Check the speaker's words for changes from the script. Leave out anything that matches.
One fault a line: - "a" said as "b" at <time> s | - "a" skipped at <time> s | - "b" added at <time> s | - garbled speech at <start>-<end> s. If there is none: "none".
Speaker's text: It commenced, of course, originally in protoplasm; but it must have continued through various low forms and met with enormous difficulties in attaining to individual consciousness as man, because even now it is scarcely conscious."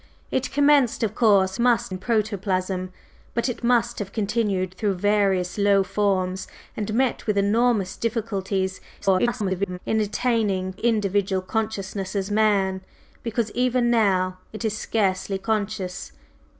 - "originally" said as "must" at 1.6 s
- garbled speech at 9.0-9.8 s
- "to" skipped at 10.7 s